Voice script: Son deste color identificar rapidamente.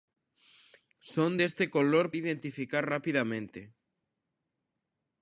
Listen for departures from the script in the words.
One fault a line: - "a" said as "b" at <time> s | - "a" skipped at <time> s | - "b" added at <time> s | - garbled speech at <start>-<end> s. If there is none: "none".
none